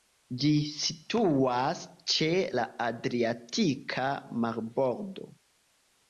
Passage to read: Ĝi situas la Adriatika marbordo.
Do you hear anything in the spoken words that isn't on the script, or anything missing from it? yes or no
yes